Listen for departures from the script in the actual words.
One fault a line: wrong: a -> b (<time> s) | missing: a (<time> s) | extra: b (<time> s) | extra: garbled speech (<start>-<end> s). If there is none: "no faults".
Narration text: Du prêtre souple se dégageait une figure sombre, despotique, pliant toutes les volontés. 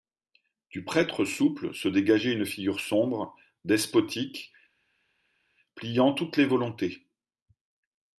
no faults